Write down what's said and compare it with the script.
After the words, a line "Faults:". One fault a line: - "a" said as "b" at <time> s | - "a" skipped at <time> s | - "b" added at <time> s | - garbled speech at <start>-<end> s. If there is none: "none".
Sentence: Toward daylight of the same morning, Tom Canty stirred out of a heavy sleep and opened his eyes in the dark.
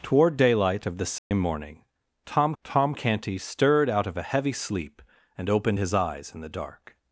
Toward daylight of the same morning, Tom Tom Canty stirred out of a heavy sleep and opened his eyes in the dark.
Faults:
- "Tom" added at 2.6 s